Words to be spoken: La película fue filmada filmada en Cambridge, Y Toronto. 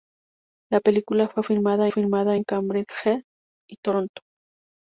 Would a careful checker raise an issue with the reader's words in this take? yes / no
no